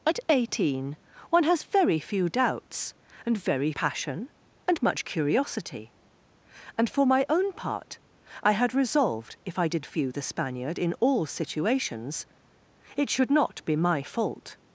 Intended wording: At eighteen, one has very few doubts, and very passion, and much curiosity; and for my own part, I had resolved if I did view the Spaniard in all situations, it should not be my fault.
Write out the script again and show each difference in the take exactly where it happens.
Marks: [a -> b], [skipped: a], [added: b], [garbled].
At eighteen, one has very few doubts, and very passion, and much curiosity; and for my own part, I had resolved if I did view the Spaniard in all situations, it should not be my fault.